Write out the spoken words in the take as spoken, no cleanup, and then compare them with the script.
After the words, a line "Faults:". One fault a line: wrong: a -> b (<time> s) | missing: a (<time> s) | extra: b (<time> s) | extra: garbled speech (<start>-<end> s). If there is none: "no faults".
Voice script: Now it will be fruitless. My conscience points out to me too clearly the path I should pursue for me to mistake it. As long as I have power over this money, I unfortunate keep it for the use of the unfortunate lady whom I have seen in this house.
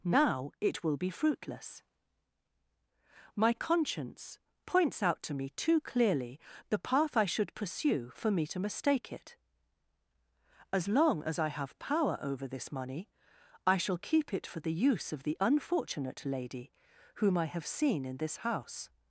Now it will be fruitless. My conscience points out to me too clearly the path I should pursue for me to mistake it. As long as I have power over this money, I shall keep it for the use of the unfortunate lady whom I have seen in this house.
Faults:
wrong: unfortunate -> shall (13.8 s)